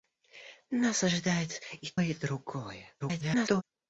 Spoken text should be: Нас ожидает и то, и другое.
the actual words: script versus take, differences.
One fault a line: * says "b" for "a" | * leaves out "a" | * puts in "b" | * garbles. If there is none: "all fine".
* leaves out "то"
* garbles